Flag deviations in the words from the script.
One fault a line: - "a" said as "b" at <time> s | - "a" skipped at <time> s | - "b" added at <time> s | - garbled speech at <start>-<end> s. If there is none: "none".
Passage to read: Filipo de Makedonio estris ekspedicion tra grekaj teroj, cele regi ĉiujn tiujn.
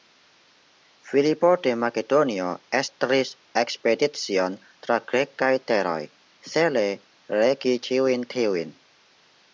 none